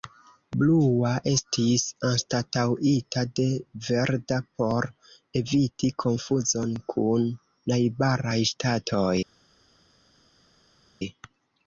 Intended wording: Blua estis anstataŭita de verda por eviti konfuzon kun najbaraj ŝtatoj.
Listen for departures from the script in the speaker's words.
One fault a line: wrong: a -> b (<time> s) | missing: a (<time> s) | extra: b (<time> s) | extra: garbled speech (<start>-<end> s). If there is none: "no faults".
no faults